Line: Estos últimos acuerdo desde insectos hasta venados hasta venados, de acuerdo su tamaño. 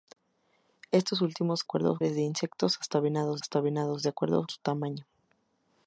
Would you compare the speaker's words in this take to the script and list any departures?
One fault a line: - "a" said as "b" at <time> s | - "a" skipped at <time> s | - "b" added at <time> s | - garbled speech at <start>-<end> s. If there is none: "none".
none